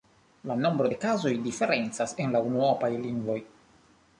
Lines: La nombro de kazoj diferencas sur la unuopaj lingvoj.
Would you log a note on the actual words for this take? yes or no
yes